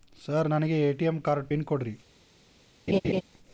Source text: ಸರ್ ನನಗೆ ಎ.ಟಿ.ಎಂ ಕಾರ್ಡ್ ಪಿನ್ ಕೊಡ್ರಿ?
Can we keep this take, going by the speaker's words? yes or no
yes